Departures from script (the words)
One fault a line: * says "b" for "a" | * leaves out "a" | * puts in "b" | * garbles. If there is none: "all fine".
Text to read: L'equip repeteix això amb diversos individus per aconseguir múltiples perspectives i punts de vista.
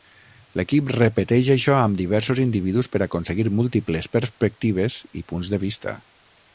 all fine